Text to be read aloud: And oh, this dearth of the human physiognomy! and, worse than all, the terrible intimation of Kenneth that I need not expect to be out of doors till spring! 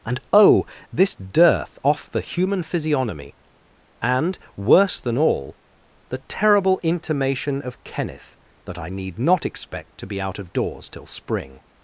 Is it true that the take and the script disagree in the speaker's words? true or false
true